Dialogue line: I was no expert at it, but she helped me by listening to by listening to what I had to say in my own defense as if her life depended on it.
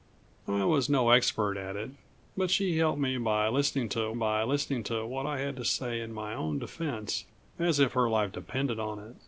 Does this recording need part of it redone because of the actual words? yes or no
no